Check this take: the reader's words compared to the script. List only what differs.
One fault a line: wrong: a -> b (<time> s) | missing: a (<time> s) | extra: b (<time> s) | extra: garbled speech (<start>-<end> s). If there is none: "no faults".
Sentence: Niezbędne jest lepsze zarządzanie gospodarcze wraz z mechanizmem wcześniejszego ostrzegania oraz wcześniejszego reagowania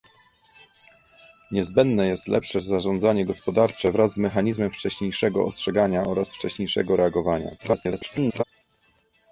extra: garbled speech (7.6-8.4 s)